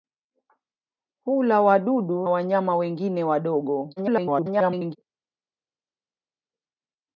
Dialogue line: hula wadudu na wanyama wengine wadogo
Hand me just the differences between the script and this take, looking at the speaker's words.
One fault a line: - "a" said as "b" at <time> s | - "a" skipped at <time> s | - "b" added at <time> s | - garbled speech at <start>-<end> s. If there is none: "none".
- "na" skipped at 2.3 s
- garbled speech at 4.0-5.0 s